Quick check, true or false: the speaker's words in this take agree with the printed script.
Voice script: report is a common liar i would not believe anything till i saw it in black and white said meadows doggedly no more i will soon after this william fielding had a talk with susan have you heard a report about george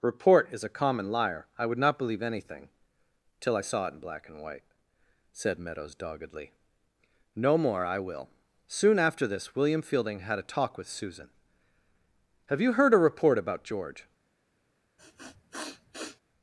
true